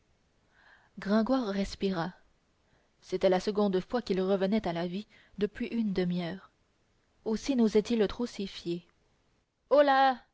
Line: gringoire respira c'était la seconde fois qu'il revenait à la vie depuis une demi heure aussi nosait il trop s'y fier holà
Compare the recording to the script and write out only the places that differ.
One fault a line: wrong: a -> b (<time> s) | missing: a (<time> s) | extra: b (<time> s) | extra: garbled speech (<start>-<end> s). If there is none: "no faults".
no faults